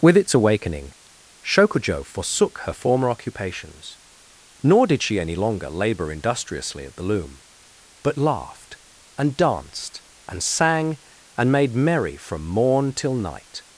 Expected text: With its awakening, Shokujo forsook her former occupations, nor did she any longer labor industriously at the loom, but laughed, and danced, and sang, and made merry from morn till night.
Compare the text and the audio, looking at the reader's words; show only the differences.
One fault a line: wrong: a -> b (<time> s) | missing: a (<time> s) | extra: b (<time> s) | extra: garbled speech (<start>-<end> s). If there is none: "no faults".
no faults